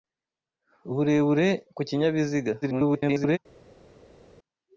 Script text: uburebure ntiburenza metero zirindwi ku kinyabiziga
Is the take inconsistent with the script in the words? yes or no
yes